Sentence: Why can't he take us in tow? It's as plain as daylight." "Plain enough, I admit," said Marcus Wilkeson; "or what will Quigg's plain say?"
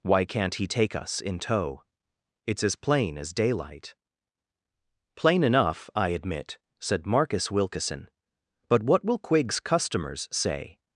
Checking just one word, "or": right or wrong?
wrong